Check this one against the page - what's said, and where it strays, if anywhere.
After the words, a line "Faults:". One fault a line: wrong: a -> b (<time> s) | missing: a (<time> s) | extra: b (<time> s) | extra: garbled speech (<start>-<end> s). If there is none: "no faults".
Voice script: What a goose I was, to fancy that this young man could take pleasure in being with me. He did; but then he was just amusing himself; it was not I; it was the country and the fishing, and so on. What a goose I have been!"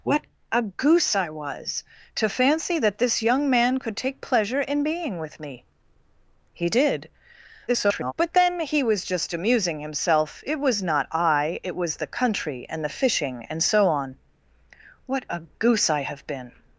What a goose I was, to fancy that this young man could take pleasure in being with me. He did; [garbled] but then he was just amusing himself; it was not I; it was the country and the fishing, and so on. What a goose I have been!"
Faults:
extra: garbled speech (7.7-8.1 s)